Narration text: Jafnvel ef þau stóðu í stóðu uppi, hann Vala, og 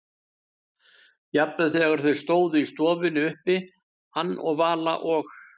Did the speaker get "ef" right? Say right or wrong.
wrong